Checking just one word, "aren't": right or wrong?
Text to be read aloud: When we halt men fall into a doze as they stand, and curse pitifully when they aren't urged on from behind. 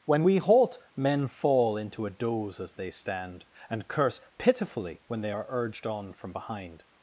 wrong